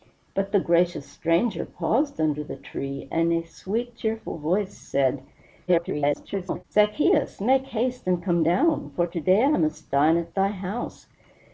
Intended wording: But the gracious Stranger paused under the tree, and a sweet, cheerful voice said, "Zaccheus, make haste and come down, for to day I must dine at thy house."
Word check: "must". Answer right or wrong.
right